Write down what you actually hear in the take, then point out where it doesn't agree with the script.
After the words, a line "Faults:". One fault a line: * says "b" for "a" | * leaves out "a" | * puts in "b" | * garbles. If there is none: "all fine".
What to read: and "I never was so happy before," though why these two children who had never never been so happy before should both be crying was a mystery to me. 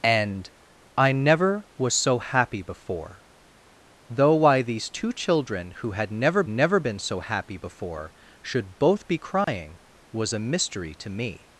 and "I never was so happy before," though why these two children who had never never been so happy before should both be crying was a mystery to me.
Faults:
all fine